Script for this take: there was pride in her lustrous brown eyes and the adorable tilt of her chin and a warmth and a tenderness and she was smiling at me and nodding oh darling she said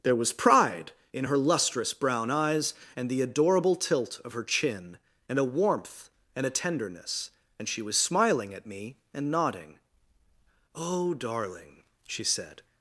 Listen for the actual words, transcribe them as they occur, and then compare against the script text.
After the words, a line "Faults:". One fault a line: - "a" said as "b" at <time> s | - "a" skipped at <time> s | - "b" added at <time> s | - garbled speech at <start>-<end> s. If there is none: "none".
there was pride in her lustrous brown eyes and the adorable tilt of her chin and a warmth and a tenderness and she was smiling at me and nodding oh darling she said
Faults:
none